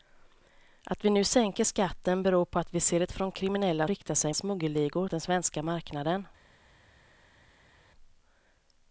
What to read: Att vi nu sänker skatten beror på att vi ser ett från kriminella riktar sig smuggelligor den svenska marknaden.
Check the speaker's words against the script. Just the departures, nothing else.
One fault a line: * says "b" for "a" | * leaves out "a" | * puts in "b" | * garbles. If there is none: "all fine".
all fine